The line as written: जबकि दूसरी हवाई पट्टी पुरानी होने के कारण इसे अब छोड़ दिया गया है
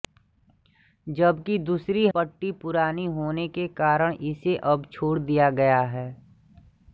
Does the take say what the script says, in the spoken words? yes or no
no